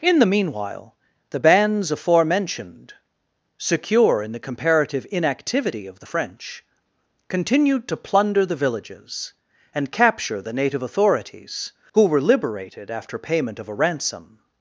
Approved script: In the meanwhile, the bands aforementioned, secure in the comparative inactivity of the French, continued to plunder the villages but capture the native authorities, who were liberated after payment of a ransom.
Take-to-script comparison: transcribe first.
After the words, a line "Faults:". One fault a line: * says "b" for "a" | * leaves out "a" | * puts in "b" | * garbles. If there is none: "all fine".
In the meanwhile, the bands aforementioned, secure in the comparative inactivity of the French, continued to plunder the villages and capture the native authorities, who were liberated after payment of a ransom.
Faults:
* says "and" for "but"